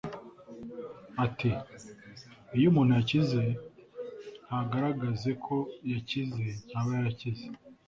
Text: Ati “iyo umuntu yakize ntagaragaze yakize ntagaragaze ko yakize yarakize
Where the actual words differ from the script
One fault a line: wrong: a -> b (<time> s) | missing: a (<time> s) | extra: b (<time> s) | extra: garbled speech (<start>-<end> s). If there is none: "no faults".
missing: yakize ntagaragaze (5.3 s)
extra: ntaba (6.7 s)